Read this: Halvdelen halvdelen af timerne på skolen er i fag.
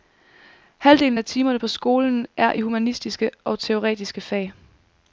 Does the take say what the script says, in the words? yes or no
no